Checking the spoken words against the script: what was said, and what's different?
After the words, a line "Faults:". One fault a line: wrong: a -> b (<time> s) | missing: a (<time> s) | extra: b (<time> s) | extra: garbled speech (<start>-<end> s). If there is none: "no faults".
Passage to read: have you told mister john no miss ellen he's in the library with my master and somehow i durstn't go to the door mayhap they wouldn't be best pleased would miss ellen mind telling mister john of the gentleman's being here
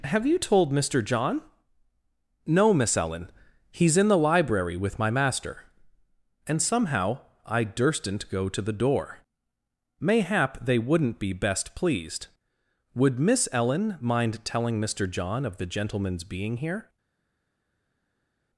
have you told mister john no miss ellen he's in the library with my master and somehow i durstn't go to the door mayhap they wouldn't be best pleased would miss ellen mind telling mister john of the gentleman's being here
Faults:
no faults